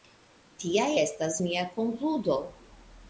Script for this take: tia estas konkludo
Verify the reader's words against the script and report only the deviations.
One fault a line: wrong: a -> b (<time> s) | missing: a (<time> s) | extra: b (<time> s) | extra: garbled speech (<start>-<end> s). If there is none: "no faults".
extra: mia (1.4 s)